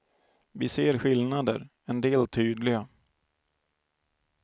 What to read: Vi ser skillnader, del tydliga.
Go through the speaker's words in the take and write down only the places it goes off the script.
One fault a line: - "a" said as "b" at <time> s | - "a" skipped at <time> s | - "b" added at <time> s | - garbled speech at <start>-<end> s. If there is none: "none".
- "en" added at 1.9 s